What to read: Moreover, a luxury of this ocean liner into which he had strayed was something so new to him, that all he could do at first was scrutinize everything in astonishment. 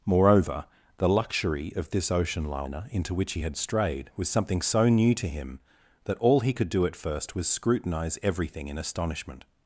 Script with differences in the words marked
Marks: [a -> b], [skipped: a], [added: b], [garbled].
Moreover, [a -> the] luxury of this ocean liner into which he had strayed was something so new to him, that all he could do at first was scrutinize everything in astonishment.